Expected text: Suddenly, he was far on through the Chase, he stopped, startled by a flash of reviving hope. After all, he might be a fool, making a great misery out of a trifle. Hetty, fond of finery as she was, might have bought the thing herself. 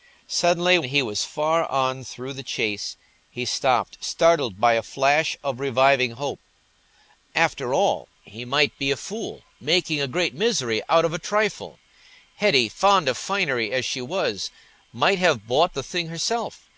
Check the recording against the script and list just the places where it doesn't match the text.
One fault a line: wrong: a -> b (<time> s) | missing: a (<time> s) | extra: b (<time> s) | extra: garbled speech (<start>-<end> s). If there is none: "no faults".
no faults